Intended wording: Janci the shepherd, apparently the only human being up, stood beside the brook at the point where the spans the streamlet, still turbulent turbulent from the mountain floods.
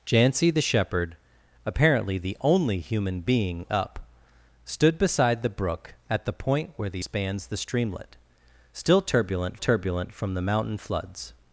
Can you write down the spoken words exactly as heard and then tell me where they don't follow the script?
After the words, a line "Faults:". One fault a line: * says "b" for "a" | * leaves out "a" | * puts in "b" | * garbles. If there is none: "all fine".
Janci the shepherd, apparently the only human being up, stood beside the brook at the point where the spans the streamlet, still turbulent turbulent from the mountain floods.
Faults:
all fine